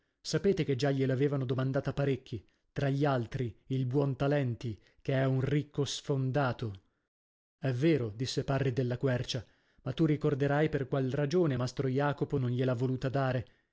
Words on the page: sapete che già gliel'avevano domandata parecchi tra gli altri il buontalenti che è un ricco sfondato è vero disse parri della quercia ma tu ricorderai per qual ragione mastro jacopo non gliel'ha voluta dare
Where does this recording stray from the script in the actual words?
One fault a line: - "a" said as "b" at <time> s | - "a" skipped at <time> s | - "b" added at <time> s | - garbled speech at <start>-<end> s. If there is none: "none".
none